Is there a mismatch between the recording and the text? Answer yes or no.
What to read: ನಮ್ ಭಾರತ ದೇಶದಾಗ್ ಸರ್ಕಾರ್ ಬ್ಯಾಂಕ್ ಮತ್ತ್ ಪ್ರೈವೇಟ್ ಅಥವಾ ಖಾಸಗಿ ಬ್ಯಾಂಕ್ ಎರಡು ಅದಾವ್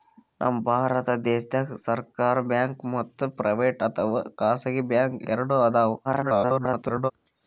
yes